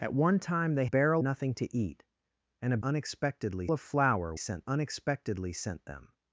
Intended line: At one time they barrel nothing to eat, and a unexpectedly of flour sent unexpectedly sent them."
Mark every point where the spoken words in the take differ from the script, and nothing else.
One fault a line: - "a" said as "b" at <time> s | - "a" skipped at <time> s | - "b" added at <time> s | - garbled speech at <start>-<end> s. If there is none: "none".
none